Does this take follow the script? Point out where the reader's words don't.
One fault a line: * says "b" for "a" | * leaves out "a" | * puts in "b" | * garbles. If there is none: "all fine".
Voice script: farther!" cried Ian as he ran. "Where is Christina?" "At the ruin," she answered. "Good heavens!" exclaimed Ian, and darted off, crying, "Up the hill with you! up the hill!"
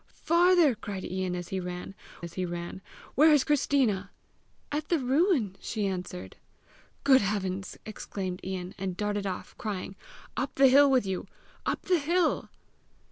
* puts in "as he ran"